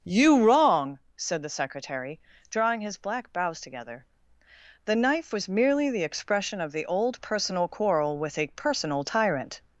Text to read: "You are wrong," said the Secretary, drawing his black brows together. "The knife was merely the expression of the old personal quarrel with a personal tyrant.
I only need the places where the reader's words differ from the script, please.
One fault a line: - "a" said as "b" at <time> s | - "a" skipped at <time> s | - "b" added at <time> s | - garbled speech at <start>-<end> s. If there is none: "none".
- "are" skipped at 0.4 s